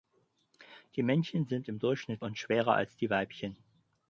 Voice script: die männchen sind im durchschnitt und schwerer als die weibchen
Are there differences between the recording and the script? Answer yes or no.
no